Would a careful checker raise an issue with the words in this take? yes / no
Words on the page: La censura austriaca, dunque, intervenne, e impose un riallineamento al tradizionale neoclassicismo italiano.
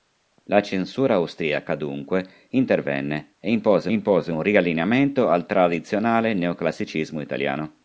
yes